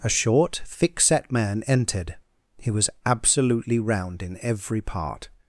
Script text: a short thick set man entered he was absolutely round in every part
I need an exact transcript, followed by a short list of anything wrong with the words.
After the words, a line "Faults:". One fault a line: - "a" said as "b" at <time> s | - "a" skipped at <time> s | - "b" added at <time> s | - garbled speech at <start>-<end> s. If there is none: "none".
a short thick set man entered he was absolutely round in every part
Faults:
none